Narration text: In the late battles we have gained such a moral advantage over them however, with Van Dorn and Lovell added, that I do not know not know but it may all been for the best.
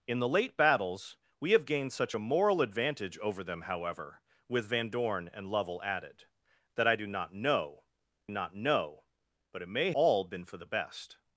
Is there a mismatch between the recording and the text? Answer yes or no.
no